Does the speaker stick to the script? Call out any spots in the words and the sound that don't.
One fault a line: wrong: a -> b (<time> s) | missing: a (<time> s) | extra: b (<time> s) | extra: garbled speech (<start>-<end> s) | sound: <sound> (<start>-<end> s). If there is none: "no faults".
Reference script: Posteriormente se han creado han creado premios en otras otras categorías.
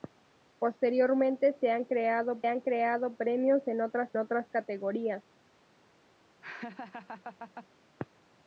sound: laugh (6.4-7.7 s)